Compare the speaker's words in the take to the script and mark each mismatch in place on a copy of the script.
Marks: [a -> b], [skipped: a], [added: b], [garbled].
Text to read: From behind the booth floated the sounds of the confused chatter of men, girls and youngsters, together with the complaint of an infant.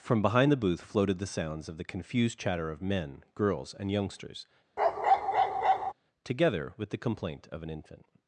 From behind the booth floated the sounds of the confused chatter of men, girls and youngsters, together with the complaint of an infant.